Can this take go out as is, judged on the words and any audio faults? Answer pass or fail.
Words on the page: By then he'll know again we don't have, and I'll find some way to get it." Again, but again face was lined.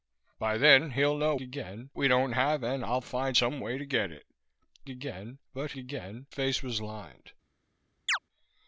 fail